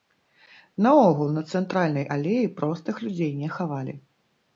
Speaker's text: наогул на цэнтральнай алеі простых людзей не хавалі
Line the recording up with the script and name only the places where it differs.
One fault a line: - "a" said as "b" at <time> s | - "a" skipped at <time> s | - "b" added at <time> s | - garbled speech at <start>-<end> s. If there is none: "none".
none